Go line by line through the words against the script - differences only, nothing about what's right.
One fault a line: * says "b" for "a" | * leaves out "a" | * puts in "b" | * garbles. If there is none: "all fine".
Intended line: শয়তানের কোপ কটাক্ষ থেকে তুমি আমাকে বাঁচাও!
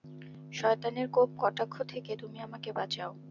all fine